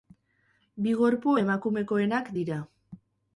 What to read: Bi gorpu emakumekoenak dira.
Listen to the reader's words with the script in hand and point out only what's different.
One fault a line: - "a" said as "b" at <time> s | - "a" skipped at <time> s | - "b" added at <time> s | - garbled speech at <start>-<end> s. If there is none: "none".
none